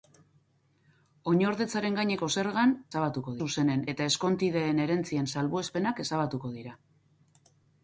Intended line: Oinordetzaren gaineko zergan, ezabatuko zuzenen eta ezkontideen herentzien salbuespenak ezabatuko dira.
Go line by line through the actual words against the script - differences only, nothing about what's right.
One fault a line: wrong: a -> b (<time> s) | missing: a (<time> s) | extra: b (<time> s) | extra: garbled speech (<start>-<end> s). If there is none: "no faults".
no faults